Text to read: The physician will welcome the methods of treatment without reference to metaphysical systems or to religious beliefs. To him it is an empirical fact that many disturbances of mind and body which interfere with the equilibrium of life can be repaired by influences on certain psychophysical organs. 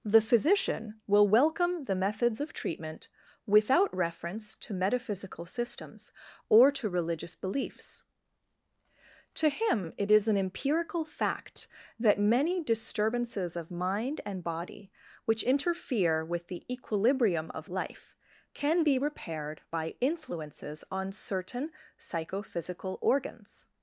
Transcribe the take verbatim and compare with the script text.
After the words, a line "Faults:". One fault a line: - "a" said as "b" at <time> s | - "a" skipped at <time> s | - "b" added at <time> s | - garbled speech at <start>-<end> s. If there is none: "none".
The physician will welcome the methods of treatment without reference to metaphysical systems or to religious beliefs. To him it is an empirical fact that many disturbances of mind and body which interfere with the equilibrium of life can be repaired by influences on certain psychophysical organs.
Faults:
none